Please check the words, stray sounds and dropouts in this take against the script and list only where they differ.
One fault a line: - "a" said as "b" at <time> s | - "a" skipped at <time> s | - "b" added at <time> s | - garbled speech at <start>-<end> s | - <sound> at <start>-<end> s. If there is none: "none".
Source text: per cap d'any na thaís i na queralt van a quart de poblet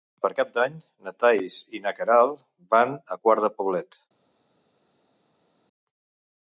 none